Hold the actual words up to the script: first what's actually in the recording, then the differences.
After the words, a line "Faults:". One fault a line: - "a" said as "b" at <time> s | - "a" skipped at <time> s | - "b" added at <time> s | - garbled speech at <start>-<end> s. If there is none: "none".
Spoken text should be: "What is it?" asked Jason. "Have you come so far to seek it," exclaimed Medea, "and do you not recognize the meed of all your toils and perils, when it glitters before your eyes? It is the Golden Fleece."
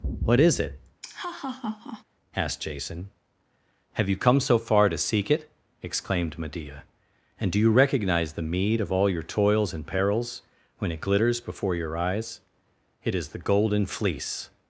"What is it?" asked Jason. "Have you come so far to seek it," exclaimed Medea, "and do you recognize the meed of all your toils and perils, when it glitters before your eyes? It is the Golden Fleece."
Faults:
- "not" skipped at 7.7 s